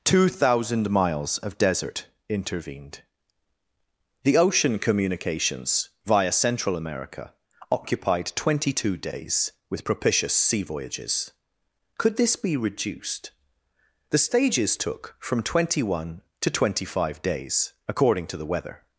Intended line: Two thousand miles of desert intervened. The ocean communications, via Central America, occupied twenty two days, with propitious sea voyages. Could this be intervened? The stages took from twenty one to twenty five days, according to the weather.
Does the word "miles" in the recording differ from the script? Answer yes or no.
no